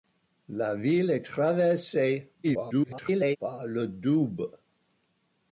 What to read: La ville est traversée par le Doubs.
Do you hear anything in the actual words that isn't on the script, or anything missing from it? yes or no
yes